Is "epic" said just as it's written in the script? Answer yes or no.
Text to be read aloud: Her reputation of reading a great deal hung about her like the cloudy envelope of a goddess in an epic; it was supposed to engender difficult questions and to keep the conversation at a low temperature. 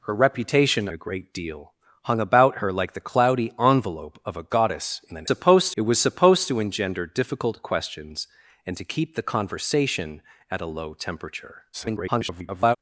no